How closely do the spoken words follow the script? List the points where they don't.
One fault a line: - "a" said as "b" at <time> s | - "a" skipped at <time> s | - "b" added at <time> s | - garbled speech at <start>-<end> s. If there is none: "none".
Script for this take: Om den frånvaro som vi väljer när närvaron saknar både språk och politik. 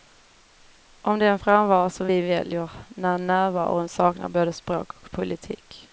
none